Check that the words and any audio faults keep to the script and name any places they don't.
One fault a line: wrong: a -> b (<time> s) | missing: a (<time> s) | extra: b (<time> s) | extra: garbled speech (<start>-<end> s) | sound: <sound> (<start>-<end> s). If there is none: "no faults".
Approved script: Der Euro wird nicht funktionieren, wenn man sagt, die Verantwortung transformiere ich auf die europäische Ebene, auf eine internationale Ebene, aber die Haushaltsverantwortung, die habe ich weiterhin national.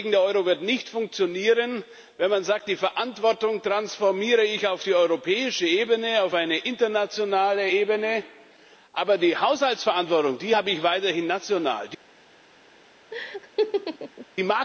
sound: laugh (13.1-14.3 s)